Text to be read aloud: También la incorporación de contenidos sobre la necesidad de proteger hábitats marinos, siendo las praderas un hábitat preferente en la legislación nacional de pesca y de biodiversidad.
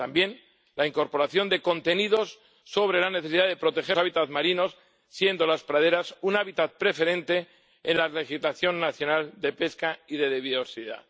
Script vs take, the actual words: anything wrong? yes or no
no